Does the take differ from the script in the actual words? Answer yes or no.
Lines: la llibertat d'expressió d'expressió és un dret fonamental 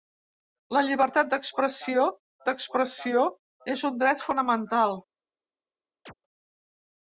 no